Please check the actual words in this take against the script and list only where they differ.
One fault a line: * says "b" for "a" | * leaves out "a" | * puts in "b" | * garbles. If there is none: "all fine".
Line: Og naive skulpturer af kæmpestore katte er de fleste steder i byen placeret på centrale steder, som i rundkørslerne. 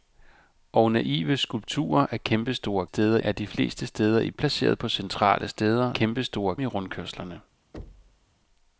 * says "steder" for "katte"
* leaves out "byen"
* says "kæmpestore" for "som"